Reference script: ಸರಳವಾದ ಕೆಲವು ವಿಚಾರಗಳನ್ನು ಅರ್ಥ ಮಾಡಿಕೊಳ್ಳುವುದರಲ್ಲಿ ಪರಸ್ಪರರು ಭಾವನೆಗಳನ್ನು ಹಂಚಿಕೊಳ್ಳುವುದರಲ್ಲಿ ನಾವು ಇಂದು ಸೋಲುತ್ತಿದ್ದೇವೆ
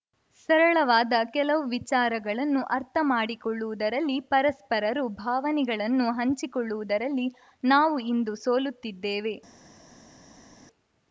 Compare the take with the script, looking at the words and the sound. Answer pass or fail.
pass